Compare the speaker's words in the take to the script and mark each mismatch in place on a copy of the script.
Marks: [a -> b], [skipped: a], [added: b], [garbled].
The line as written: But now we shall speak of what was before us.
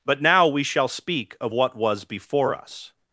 But now we shall speak of what was before us.